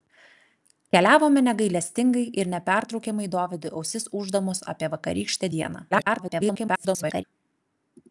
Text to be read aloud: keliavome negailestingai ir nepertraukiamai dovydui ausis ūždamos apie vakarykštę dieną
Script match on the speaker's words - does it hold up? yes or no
no